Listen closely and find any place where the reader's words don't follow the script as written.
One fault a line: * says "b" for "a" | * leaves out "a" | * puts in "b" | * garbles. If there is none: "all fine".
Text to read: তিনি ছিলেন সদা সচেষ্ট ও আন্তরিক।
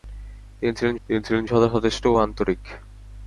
* puts in "তিনি ছিলেন"